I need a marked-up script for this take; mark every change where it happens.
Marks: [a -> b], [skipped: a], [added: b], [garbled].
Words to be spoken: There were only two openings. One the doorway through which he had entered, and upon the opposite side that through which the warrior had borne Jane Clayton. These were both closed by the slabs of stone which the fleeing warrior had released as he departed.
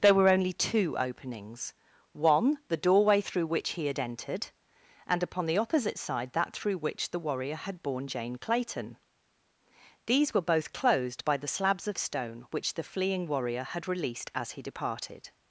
There were only two openings. One the doorway through which he had entered, and upon the opposite side that through which the warrior had borne Jane Clayton. These were both closed by the slabs of stone which the fleeing warrior had released as he departed.